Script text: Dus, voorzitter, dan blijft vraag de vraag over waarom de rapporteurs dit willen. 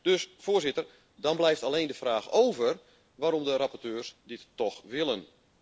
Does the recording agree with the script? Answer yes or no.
no